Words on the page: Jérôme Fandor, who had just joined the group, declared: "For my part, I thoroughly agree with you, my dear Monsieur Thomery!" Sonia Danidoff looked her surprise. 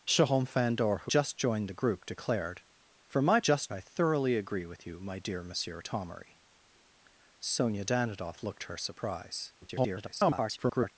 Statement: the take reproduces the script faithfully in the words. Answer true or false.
false